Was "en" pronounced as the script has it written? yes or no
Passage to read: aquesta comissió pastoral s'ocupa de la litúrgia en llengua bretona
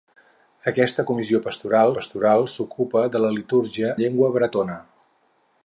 no